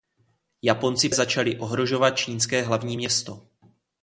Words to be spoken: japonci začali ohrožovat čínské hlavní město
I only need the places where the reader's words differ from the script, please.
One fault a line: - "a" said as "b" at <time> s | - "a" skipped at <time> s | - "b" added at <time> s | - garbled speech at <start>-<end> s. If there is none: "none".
none